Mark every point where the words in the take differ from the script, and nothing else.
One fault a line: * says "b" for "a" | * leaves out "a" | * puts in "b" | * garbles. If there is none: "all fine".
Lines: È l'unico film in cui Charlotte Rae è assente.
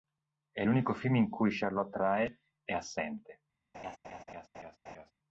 all fine